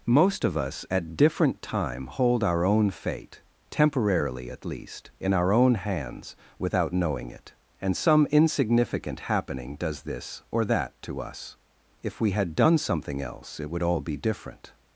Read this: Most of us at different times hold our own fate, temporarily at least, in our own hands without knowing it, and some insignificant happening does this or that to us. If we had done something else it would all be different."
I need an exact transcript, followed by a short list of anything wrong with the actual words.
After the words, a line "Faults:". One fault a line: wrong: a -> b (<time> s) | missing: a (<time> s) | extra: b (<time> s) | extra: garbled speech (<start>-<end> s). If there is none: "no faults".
Most of us at different time hold our own fate, temporarily at least, in our own hands without knowing it, and some insignificant happening does this or that to us. If we had done something else it would all be different."
Faults:
wrong: times -> time (1.6 s)